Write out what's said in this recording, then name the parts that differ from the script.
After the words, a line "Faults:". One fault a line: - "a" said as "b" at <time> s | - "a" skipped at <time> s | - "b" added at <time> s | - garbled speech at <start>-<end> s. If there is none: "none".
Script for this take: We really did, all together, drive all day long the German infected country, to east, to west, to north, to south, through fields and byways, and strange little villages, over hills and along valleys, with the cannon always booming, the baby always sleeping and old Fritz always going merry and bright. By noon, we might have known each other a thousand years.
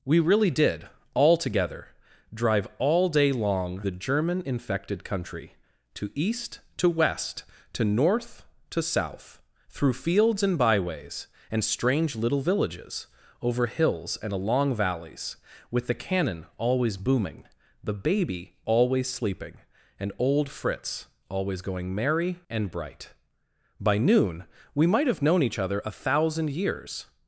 We really did, all together, drive all day long the German infected country, to east, to west, to north, to south, through fields and byways, and strange little villages, over hills and along valleys, with the cannon always booming, the baby always sleeping and old Fritz always going merry and bright. By noon, we might have known each other a thousand years.
Faults:
none